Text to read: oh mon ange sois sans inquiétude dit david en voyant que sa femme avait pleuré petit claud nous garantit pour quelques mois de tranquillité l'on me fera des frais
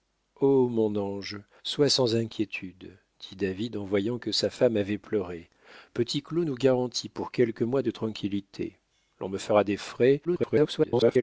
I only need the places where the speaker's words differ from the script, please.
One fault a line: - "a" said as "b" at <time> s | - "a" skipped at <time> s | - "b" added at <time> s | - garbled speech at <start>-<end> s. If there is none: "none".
- garbled speech at 10.2-11.2 s